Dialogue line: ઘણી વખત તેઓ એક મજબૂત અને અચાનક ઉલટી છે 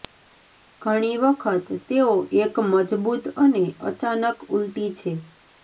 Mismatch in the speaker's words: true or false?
false